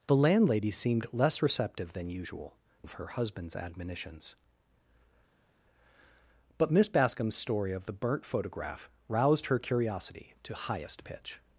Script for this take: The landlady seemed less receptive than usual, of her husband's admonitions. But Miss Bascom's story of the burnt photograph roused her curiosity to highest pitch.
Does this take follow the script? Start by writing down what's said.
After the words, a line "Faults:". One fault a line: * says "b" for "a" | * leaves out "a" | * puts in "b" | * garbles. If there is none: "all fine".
The landlady seemed less receptive than usual, of her husband's admonitions. But Miss Bascom's story of the burnt photograph roused her curiosity to highest pitch.
Faults:
all fine